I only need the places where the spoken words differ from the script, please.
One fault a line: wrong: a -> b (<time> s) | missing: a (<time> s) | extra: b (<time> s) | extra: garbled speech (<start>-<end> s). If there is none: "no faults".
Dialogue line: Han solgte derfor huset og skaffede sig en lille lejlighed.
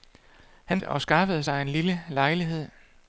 missing: solgte derfor huset (0.8 s)